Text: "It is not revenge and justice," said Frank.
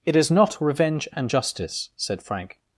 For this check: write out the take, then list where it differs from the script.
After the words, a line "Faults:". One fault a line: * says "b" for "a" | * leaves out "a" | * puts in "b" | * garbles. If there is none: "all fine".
"It is not revenge and justice," said Frank.
Faults:
all fine